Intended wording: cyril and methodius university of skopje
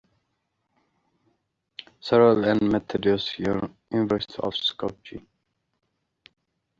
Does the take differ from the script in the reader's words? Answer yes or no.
no